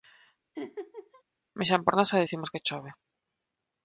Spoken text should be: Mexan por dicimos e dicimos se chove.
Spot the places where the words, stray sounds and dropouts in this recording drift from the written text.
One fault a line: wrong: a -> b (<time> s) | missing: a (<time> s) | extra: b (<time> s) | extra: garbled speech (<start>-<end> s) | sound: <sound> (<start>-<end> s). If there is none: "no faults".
sound: laugh (0.5-1.2 s)
wrong: dicimos -> nós (2.0 s)
wrong: se -> que (2.5 s)